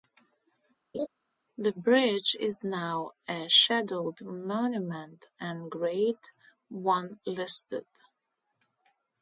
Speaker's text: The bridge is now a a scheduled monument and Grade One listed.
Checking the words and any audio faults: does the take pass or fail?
fail